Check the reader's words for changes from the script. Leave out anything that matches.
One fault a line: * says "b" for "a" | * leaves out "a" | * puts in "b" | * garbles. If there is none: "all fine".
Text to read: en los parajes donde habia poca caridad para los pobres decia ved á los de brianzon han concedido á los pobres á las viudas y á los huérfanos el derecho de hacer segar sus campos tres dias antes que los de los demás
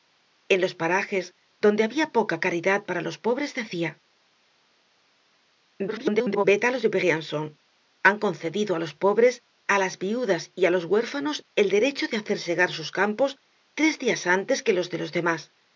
* garbles